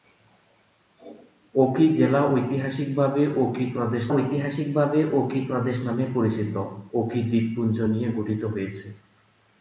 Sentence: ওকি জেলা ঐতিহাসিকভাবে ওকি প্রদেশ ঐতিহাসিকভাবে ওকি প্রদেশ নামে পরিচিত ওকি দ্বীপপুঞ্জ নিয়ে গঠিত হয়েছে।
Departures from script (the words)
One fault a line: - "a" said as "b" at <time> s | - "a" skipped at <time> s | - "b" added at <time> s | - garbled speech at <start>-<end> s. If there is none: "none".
none